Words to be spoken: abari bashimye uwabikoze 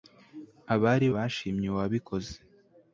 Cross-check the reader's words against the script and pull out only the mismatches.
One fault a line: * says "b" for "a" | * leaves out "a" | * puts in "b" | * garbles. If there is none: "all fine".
all fine